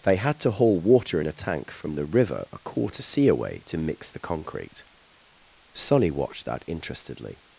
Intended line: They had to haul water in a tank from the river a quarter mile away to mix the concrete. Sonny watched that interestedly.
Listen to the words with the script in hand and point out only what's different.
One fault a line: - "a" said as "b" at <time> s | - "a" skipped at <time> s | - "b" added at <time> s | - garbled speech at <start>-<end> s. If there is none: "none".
- "mile" said as "sea" at 3.0 s